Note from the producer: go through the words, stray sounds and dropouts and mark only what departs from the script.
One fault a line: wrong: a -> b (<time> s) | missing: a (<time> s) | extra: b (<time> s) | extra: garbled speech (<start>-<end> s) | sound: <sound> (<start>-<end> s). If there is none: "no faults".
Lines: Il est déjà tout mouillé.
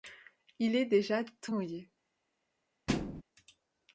sound: thud (2.9-3.2 s)